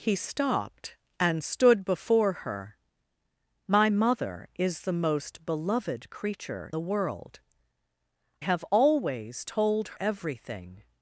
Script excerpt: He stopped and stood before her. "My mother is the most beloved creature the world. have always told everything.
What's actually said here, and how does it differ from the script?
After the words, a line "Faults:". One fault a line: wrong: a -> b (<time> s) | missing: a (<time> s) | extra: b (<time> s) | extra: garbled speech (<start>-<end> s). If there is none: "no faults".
He stopped and stood before her. "My mother is the most beloved creature the world. have always told everything.
Faults:
no faults